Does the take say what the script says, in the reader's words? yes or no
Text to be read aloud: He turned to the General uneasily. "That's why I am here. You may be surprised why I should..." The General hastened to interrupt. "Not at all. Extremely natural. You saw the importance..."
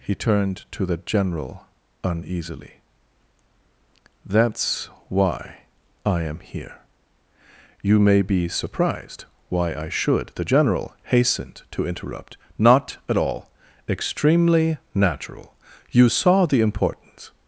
yes